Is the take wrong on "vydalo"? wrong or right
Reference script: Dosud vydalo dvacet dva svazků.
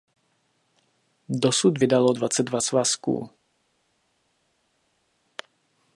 right